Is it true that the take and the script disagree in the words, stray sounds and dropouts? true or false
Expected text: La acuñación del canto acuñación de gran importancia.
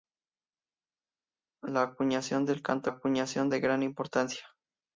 false